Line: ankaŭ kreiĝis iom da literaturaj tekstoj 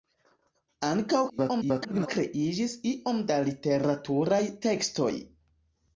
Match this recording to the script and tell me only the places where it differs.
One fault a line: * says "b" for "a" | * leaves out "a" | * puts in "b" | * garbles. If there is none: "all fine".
* garbles